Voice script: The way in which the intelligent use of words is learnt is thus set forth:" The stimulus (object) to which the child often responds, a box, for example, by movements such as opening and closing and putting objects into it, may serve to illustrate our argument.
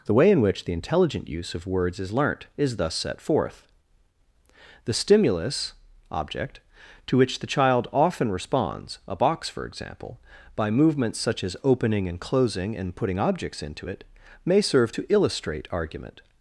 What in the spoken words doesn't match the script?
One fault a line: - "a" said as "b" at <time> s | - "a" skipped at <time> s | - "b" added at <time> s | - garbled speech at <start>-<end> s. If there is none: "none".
- "our" skipped at 15.7 s